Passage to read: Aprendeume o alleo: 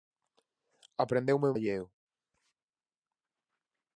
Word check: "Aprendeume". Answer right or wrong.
right